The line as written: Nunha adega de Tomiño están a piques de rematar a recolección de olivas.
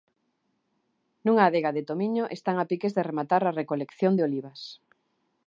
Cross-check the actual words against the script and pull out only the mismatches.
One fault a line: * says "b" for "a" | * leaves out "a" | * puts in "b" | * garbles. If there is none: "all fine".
all fine